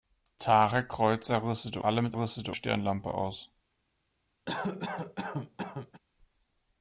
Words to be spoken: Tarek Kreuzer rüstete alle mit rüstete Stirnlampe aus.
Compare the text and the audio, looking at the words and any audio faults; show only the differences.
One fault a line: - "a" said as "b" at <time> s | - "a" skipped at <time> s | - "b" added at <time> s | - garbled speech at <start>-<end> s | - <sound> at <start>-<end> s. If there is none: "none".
- cough at 4.5-6.0 s